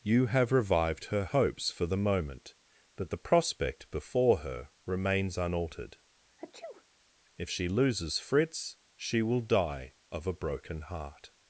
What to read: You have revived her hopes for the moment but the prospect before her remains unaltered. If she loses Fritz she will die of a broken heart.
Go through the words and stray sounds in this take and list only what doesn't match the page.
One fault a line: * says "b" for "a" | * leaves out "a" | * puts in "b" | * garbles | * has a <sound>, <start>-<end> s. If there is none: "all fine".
* has a sneeze, 6.4-6.8 s